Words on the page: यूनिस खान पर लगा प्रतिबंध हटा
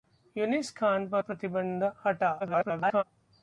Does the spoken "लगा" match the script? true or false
false